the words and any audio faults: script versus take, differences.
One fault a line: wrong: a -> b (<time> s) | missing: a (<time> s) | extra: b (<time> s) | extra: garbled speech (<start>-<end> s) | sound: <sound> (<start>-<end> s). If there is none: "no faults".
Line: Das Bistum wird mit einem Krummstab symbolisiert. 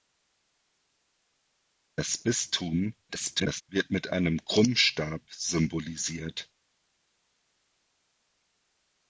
extra: garbled speech (3.1-3.6 s)